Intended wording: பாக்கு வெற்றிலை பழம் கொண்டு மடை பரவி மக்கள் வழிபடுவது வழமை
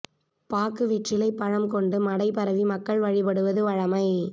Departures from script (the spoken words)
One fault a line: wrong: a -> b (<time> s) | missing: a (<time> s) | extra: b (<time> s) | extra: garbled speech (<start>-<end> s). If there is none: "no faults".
no faults